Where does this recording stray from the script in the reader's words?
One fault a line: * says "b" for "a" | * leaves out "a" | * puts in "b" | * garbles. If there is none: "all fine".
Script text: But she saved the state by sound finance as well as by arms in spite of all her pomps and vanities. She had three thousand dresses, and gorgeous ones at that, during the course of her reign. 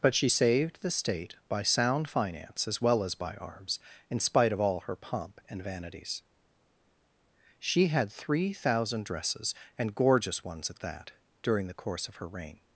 * says "pomp" for "pomps"